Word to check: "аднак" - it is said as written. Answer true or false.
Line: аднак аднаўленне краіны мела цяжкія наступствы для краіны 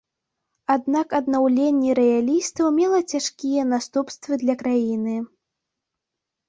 true